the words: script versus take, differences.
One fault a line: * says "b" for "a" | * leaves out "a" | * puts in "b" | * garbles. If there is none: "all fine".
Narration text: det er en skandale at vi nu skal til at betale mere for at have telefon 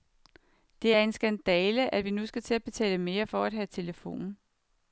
all fine